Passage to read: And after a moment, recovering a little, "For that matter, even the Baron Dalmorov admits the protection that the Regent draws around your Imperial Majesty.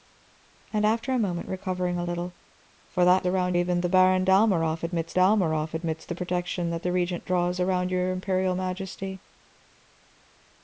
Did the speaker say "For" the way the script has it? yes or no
yes